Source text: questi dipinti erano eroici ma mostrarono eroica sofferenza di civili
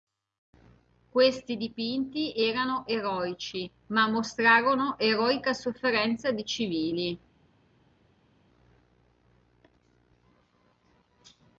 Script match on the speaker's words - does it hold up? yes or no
yes